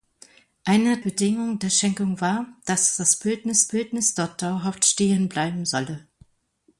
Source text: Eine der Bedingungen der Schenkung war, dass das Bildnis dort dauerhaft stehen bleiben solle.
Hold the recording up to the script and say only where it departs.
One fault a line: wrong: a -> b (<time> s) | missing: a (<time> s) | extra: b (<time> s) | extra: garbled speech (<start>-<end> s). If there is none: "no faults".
missing: der (1.0 s)
extra: Bildnis (3.7 s)